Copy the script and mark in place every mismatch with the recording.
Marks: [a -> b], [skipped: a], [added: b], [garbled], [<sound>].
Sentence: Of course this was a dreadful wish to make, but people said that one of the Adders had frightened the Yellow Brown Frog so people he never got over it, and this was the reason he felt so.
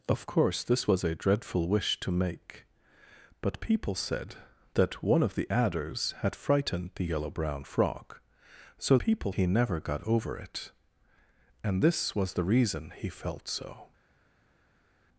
Of course this was a dreadful wish to make, but people said that one of the Adders had frightened the Yellow Brown Frog so people he never got over it, and this was the reason he felt so.